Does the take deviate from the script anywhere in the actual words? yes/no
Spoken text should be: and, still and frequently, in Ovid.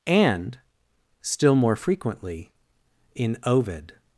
yes